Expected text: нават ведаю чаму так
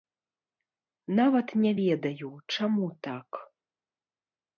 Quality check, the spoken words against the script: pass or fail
fail